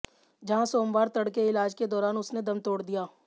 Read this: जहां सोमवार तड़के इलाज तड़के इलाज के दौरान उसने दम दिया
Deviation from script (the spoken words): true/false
true